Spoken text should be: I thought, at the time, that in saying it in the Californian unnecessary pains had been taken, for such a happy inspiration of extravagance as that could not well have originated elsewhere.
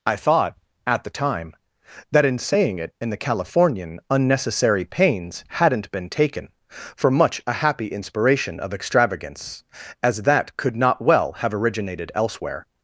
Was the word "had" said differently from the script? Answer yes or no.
yes